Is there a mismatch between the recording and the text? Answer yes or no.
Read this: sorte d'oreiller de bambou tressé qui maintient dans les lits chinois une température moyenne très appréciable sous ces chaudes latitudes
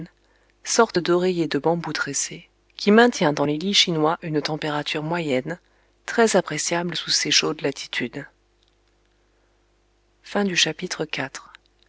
no